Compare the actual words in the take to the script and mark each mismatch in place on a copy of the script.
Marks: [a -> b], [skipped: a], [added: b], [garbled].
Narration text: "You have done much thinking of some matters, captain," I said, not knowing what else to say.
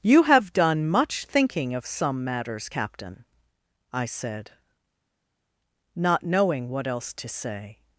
"You have done much thinking of some matters, captain," I said, not knowing what else to say.